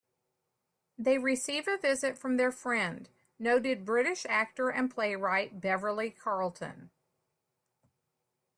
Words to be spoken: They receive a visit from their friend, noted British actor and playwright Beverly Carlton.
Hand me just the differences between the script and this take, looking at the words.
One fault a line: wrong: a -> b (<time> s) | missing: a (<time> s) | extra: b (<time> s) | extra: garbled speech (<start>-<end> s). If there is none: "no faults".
no faults